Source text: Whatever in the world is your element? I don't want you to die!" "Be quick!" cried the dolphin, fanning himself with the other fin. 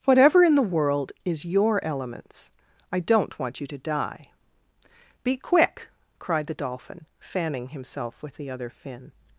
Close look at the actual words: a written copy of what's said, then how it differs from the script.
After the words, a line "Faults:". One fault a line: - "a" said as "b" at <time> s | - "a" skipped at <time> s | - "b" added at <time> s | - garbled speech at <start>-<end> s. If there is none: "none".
Whatever in the world is your elements? I don't want you to die!" "Be quick!" cried the dolphin, fanning himself with the other fin.
Faults:
- "element" said as "elements" at 1.8 s